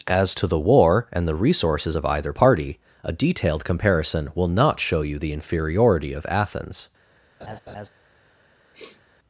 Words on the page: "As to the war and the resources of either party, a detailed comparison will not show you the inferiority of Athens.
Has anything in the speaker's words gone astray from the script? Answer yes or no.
no